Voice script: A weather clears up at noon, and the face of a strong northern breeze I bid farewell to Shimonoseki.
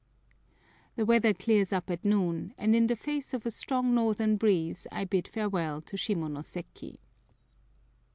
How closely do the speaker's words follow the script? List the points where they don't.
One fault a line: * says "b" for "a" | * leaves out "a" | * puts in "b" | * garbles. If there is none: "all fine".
* says "The" for "A"
* puts in "in"